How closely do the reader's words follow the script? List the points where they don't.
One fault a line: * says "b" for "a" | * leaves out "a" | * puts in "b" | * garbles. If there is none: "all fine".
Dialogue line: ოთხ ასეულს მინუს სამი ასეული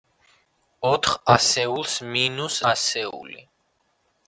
* leaves out "სამი"